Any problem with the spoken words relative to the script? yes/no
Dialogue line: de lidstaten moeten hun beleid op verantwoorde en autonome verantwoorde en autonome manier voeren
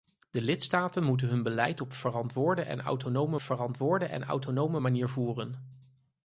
no